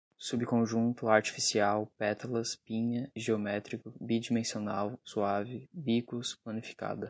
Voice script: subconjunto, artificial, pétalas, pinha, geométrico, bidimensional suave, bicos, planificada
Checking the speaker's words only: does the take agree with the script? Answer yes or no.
yes